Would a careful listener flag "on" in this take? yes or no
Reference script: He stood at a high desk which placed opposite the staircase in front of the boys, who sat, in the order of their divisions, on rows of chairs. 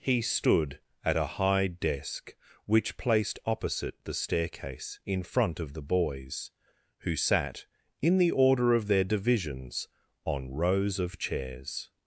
no